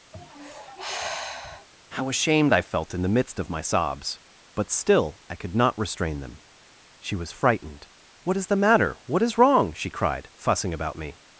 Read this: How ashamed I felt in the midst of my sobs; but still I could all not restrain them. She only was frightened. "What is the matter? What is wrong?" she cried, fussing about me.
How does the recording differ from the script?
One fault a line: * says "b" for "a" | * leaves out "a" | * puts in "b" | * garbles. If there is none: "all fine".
* leaves out "all"
* leaves out "only"